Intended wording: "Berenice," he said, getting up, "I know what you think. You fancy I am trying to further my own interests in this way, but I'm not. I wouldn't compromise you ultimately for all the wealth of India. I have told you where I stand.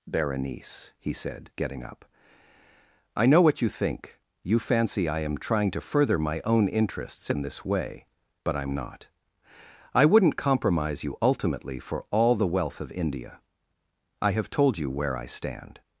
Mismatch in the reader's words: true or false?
false